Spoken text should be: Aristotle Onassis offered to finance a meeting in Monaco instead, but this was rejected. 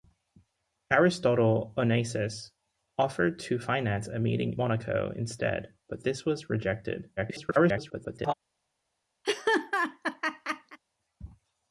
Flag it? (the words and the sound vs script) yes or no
yes